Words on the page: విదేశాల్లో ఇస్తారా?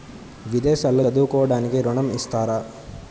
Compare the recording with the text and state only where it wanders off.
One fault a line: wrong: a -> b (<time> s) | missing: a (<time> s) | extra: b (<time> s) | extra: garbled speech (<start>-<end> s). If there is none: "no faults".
extra: చదువుకోవడానికి ఋణం (1.0 s)